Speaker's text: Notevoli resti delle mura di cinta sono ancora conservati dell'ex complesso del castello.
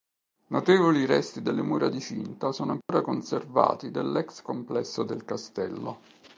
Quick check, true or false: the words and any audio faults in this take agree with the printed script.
false